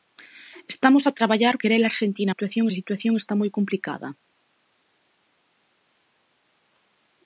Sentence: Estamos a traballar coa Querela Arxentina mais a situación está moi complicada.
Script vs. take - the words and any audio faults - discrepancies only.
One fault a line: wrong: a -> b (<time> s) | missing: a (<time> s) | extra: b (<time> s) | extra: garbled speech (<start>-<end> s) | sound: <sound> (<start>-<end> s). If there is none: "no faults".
missing: coa (1.6 s)
wrong: mais -> situación (2.3 s)